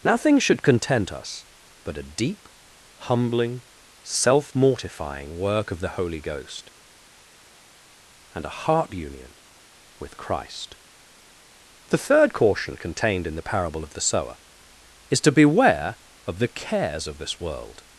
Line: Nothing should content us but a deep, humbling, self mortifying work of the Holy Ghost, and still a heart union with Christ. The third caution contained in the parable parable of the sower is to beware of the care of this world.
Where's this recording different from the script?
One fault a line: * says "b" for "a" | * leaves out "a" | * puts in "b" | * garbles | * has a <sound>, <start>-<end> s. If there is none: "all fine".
* leaves out "still"
* leaves out "parable"
* says "cares" for "care"